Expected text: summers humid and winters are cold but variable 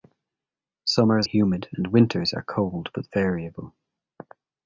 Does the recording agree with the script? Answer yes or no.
yes